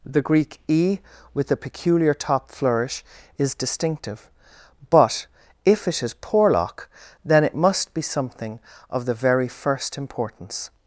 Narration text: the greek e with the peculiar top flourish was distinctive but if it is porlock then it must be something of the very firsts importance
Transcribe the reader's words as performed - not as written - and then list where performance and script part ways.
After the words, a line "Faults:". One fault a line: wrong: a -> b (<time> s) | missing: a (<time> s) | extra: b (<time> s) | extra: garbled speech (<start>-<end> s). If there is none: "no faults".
the greek e with the peculiar top flourish is distinctive but if it is porlock then it must be something of the very first importance
Faults:
wrong: was -> is (3.4 s)
wrong: firsts -> first (9.5 s)